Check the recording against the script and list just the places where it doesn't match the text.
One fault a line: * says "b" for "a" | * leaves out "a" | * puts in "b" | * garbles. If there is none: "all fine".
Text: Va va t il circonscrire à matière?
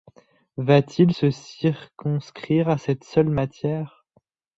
* leaves out "va"
* puts in "se"
* puts in "cette seule"